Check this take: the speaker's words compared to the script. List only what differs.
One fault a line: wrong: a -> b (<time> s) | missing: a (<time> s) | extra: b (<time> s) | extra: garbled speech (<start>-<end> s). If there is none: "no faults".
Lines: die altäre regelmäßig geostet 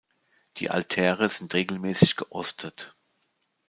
extra: sind (1.3 s)